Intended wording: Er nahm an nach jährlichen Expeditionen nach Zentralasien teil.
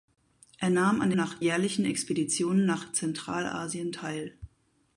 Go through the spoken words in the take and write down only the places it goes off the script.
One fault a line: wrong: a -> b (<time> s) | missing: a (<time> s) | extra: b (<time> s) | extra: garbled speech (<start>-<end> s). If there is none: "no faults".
no faults